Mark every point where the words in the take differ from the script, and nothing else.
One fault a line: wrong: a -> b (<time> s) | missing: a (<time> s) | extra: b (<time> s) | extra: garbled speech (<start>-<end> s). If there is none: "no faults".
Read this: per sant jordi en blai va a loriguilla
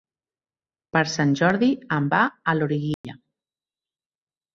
missing: blai (2.1 s)